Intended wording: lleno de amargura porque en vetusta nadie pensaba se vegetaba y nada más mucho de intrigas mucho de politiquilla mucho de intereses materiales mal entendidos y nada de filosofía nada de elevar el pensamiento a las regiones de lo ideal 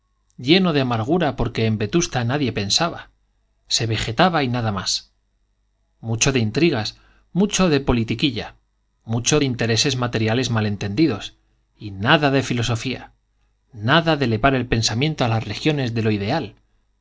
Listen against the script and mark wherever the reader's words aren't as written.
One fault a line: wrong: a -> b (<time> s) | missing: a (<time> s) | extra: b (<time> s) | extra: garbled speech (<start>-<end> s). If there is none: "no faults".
no faults